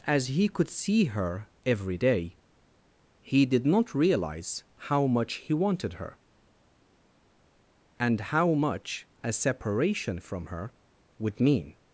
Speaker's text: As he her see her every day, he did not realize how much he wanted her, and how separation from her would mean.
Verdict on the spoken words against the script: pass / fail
fail